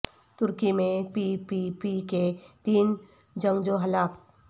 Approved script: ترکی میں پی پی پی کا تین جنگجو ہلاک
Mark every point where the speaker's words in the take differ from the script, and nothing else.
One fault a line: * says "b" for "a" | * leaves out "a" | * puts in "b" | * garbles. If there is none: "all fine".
* says "کے" for "کا"